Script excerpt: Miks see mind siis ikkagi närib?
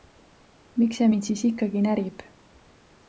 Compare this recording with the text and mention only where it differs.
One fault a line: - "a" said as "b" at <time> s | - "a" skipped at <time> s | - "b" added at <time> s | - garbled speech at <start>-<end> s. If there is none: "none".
none